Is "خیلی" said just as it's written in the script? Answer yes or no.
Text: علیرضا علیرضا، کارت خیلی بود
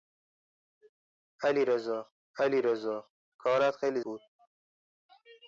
yes